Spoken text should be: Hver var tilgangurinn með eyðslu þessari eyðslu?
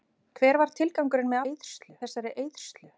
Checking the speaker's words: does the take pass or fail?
pass